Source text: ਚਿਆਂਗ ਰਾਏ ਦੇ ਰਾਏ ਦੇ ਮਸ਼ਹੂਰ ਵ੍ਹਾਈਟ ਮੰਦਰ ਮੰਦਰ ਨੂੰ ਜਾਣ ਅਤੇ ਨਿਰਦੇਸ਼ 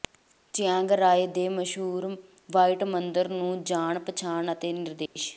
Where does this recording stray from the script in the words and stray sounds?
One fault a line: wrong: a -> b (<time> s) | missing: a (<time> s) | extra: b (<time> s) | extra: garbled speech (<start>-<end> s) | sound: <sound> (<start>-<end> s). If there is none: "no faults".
missing: ਰਾਏ ਦੇ (1.5 s)
missing: ਮੰਦਰ (3.3 s)
extra: ਪਛਾਣ (4.0 s)
sound: dropout (5.1-5.2 s)